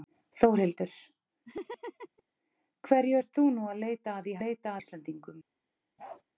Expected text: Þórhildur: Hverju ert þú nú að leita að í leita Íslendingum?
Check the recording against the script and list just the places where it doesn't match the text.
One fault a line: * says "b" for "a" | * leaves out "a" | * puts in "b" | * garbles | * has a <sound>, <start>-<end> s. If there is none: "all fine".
* has a laugh, 1.4-2.2 s
* has a bark, 6.0-6.2 s